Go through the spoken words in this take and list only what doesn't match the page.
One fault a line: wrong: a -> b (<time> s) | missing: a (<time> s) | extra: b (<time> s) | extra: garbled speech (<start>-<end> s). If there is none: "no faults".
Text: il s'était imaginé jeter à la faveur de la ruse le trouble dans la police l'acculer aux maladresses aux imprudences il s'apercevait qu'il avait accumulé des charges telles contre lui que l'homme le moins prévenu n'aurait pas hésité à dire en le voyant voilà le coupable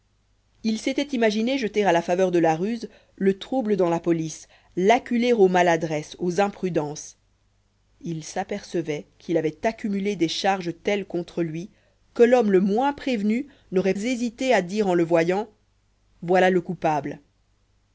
missing: pas (13.9 s)